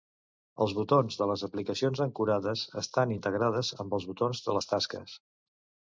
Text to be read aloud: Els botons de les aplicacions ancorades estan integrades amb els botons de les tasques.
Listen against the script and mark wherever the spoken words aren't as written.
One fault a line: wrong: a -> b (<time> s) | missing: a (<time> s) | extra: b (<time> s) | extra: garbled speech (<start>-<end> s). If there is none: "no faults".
no faults